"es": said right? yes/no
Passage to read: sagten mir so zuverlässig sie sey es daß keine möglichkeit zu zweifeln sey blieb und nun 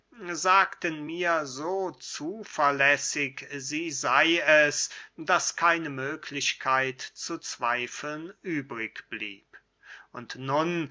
yes